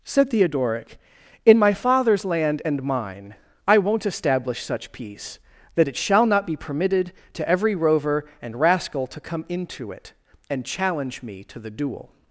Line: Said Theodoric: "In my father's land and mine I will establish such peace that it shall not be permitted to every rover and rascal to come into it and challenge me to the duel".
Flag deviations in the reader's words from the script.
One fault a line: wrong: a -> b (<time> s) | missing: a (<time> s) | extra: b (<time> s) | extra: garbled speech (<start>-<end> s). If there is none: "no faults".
wrong: will -> won't (3.8 s)